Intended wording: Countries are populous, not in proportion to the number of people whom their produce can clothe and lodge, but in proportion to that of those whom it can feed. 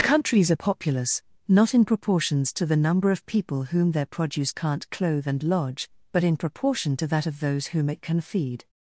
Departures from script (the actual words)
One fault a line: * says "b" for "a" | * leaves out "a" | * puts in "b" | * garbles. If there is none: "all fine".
* says "proportions" for "proportion"
* says "can't" for "can"